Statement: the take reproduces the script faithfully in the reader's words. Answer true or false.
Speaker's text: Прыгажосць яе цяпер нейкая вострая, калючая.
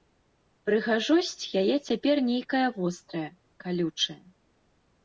true